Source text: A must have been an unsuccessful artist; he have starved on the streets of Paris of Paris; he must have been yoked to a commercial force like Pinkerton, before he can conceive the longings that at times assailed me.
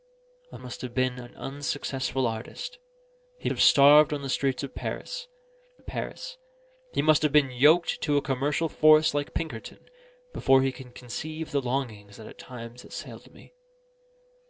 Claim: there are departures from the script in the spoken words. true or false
false